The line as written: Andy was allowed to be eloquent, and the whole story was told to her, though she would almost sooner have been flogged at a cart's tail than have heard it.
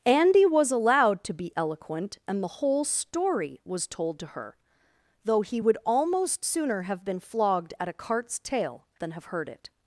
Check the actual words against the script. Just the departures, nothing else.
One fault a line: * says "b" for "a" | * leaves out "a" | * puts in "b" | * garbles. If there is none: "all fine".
* says "he" for "she"